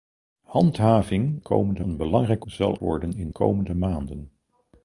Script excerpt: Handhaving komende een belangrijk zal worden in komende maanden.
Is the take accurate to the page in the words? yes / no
yes